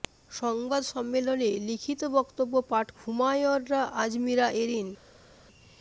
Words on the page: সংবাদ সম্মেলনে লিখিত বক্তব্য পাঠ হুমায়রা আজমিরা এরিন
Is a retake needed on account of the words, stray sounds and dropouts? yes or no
no